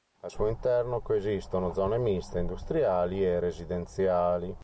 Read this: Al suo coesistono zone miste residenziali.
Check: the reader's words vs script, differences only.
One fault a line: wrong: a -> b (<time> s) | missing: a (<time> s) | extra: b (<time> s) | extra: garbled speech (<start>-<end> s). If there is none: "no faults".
extra: interno (0.5 s)
extra: industriali e (2.4 s)